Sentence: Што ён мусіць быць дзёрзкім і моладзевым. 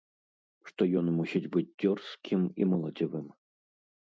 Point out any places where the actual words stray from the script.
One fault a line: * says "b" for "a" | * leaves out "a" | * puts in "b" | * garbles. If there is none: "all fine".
all fine